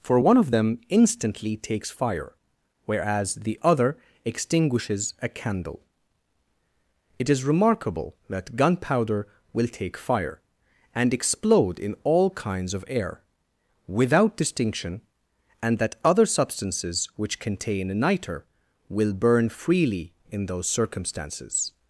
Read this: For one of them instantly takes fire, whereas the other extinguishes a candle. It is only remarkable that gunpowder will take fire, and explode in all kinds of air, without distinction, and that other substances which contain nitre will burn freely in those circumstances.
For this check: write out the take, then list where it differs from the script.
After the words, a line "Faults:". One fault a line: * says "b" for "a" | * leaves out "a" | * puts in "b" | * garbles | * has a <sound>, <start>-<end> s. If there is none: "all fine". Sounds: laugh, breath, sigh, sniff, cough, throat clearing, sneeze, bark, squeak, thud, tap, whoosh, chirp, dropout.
For one of them instantly takes fire, whereas the other extinguishes a candle. It is remarkable that gunpowder will take fire, and explode in all kinds of air, without distinction, and that other substances which contain nitre will burn freely in those circumstances.
Faults:
* leaves out "only"